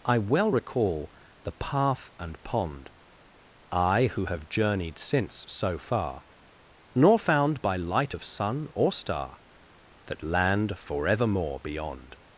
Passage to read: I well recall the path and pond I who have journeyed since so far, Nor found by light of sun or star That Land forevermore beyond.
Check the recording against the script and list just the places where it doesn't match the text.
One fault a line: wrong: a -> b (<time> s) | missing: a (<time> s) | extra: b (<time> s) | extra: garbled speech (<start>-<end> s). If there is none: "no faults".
no faults